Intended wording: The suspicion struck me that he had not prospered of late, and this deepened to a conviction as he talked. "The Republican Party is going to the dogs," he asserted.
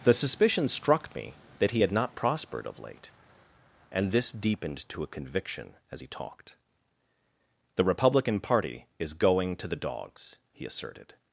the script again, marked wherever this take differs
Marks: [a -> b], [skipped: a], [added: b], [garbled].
The suspicion struck me that he had not prospered of late, and this deepened to a conviction as he talked. "The Republican Party is going to the dogs," he asserted.